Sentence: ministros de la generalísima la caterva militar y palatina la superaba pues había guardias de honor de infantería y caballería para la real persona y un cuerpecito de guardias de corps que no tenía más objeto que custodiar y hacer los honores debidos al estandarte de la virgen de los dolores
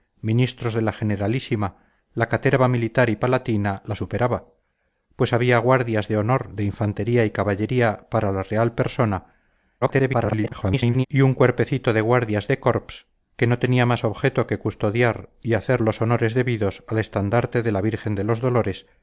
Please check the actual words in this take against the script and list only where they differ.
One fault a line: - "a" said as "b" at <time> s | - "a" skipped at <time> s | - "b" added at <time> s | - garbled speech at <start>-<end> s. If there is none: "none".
- garbled speech at 9.8-11.1 s